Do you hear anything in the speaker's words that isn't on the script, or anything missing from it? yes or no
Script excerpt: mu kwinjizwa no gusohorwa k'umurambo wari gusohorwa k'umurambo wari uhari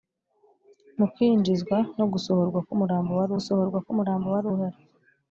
no